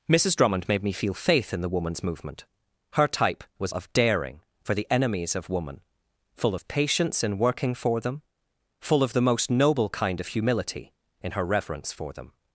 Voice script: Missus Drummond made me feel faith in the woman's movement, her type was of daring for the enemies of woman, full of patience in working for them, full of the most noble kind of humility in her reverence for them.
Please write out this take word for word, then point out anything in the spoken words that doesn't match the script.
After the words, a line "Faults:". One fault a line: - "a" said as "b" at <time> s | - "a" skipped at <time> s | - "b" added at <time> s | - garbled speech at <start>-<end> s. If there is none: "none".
Missus Drummond made me feel faith in the woman's movement, her type was of daring for the enemies of woman, full of patience in working for them, full of the most noble kind of humility in her reverence for them.
Faults:
none